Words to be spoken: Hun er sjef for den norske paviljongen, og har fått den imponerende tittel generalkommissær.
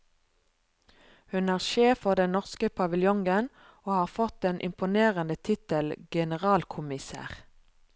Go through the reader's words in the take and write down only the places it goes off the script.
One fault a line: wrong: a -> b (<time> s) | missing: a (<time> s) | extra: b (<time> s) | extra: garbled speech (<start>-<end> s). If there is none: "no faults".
no faults